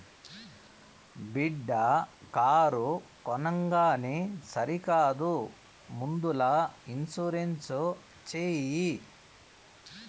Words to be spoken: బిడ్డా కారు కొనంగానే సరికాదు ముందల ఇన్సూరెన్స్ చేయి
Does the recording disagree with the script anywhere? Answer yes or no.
no